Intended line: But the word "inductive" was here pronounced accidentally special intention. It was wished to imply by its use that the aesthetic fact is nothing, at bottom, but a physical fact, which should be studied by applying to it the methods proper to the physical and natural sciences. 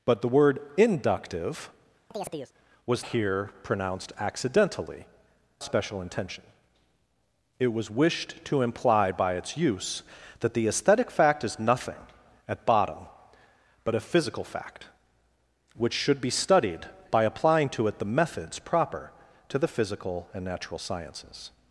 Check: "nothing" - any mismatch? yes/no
no